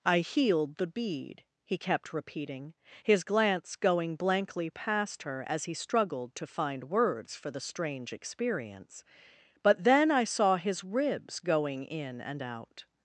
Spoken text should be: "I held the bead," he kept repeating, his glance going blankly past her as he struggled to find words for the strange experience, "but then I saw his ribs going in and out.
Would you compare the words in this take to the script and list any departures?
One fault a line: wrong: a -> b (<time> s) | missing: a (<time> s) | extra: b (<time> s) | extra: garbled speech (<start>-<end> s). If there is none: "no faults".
wrong: held -> healed (0.2 s)